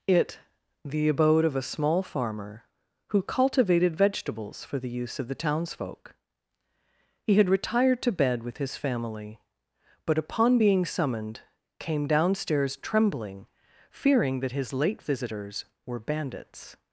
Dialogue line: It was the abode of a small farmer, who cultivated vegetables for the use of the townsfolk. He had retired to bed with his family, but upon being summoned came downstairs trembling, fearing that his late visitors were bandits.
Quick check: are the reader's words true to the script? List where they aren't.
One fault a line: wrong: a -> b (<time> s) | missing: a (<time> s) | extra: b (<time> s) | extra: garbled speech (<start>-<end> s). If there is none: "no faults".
missing: was (0.4 s)